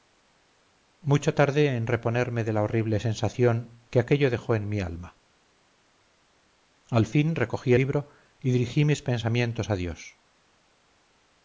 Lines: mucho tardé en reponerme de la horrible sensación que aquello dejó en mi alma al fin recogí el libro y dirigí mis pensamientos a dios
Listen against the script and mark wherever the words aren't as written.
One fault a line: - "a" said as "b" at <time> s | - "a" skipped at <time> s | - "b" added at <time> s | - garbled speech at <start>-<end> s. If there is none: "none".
- "el" skipped at 7.7 s